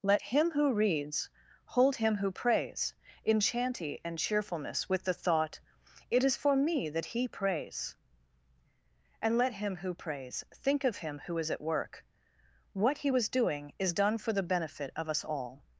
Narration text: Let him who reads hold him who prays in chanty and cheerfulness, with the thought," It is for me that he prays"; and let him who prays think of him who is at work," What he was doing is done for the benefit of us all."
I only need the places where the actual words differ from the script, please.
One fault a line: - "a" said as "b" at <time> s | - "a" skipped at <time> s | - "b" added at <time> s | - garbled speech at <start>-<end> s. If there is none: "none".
none